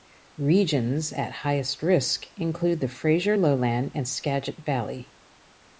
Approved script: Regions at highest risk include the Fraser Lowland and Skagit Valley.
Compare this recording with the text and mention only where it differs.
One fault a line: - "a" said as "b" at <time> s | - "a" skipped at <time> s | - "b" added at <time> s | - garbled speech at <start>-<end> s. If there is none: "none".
none